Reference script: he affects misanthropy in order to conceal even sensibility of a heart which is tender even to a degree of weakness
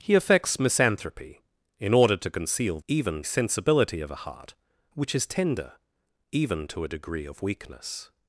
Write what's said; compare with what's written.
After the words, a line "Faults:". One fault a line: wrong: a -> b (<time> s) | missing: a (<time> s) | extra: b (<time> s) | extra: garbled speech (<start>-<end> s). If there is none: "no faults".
he affects misanthropy in order to conceal even sensibility of a heart which is tender even to a degree of weakness
Faults:
no faults